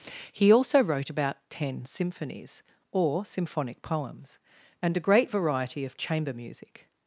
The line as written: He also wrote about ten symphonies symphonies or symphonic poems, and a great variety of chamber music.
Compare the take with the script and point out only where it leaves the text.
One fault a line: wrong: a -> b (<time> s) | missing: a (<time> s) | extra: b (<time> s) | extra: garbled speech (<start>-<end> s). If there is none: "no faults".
missing: symphonies (2.6 s)